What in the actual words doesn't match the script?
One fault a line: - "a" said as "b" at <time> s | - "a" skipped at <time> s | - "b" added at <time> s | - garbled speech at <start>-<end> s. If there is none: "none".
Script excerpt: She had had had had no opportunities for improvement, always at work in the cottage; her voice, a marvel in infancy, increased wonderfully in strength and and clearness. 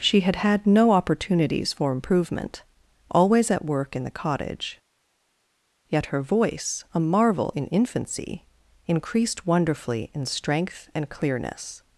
- "had had" skipped at 0.7 s
- "yet" added at 5.9 s
- "and" skipped at 11.1 s